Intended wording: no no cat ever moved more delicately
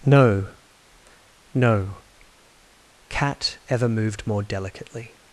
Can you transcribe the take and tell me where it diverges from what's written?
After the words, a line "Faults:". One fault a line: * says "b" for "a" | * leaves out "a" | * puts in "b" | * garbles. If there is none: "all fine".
no no cat ever moved more delicately
Faults:
all fine